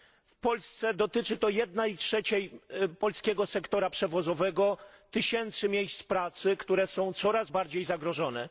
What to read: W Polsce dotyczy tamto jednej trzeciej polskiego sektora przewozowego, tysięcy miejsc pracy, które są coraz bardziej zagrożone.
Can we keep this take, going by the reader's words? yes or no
no